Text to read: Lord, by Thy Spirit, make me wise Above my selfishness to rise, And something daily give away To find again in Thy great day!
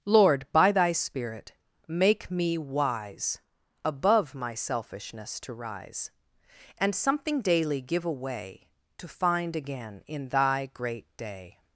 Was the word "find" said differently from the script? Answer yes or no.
no